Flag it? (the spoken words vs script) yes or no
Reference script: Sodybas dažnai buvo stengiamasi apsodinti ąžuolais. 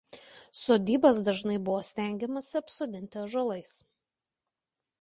no